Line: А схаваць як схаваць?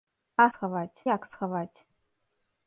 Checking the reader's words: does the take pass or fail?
pass